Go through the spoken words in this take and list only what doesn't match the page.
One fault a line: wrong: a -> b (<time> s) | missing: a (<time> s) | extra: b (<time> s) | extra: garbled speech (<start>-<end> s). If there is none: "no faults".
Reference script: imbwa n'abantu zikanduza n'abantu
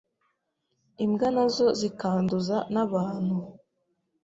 wrong: n'abantu -> nazo (1.3 s)